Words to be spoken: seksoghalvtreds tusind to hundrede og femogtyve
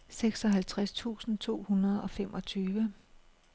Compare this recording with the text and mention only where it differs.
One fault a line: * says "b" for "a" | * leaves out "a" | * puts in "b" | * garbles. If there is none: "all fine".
all fine